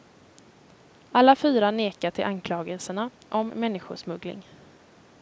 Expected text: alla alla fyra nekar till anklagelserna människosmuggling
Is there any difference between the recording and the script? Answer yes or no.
yes